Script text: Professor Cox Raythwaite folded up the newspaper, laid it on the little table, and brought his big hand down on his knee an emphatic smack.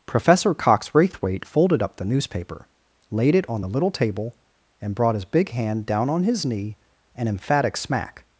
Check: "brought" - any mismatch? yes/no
no